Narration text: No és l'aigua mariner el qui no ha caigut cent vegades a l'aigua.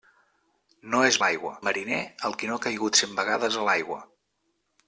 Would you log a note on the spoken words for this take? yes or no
no